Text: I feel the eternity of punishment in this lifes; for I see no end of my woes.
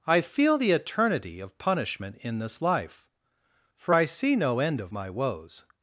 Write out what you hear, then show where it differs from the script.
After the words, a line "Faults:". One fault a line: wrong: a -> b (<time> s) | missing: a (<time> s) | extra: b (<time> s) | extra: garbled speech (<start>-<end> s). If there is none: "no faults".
I feel the eternity of punishment in this life; for I see no end of my woes.
Faults:
wrong: lifes -> life (2.6 s)